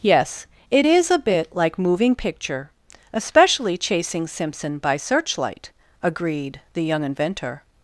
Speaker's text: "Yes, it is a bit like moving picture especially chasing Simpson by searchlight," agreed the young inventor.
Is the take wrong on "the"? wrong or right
right